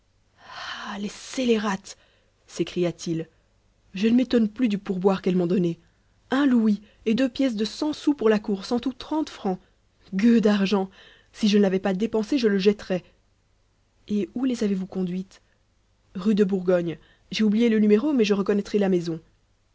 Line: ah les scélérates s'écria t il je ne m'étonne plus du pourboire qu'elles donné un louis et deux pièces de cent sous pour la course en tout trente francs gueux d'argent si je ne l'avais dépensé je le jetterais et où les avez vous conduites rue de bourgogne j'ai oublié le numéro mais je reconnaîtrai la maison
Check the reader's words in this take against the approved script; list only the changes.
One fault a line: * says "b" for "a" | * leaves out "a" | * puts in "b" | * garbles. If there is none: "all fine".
* puts in "m'ont"
* puts in "pas"